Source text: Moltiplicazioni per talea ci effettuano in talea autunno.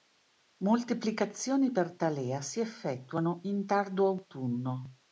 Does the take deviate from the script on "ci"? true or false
true